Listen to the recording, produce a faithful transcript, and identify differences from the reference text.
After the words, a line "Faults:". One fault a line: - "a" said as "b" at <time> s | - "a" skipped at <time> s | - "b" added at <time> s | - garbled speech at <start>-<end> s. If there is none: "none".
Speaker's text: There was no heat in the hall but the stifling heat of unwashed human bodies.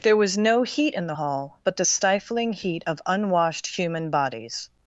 There was no heat in the hall but the stifling heat of unwashed human bodies.
Faults:
none